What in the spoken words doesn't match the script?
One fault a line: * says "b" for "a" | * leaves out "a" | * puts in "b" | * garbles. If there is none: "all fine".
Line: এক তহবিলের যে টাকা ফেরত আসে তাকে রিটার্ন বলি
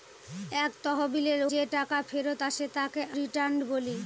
all fine